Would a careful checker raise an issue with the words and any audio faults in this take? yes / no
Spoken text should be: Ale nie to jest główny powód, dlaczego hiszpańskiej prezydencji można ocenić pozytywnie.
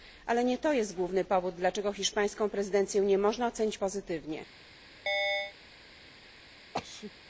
yes